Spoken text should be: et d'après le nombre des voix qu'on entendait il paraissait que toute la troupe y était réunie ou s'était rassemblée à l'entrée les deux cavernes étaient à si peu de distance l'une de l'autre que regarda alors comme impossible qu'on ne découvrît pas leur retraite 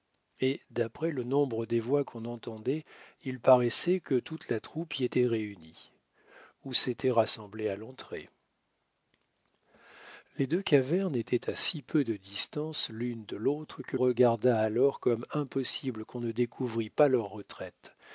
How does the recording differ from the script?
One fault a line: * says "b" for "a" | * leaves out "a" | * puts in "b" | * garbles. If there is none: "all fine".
all fine